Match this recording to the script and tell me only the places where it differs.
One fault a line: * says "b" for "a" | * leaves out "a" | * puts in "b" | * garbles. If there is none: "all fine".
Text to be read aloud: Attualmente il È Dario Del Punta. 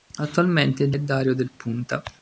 all fine